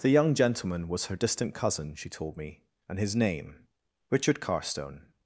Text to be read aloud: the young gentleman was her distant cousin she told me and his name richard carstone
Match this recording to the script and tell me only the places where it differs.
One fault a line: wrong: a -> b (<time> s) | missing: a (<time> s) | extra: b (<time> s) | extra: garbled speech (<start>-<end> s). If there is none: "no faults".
no faults